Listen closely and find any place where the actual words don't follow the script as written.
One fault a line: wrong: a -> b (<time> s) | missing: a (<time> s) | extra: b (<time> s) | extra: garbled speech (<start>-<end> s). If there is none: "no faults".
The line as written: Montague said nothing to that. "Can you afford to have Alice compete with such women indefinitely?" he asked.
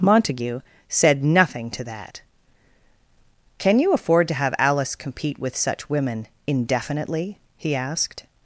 no faults